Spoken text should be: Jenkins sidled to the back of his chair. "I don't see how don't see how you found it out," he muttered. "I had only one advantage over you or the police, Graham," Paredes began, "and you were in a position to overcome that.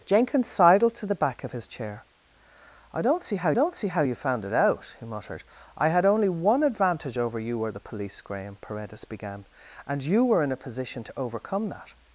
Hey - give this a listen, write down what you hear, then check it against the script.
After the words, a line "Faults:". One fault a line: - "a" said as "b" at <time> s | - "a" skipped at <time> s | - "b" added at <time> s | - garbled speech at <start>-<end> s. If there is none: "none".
Jenkins sidled to the back of his chair. "I don't see how don't see how you found it out," he muttered. "I had only one advantage over you or the police, Graham," Paredes began, "and you were in a position to overcome that.
Faults:
none